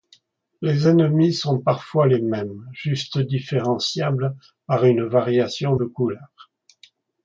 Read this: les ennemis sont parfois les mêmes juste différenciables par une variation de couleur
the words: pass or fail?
pass